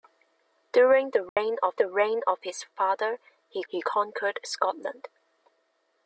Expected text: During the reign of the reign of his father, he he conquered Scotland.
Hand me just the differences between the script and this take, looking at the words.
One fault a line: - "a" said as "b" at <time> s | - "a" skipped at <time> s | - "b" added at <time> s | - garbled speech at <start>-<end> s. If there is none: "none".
none